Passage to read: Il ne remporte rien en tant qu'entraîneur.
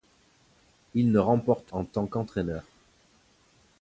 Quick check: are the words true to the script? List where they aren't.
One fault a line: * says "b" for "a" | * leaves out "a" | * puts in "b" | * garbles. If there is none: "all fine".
* leaves out "rien"